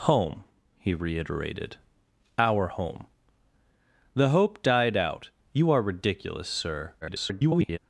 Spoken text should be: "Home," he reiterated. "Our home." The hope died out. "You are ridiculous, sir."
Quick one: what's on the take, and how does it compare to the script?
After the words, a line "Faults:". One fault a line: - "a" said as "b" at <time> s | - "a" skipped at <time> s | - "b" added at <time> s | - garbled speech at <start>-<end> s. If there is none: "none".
"Home," he reiterated. "Our home." The hope died out. "You are ridiculous, sir." [garbled]
Faults:
- garbled speech at 7.0-7.8 s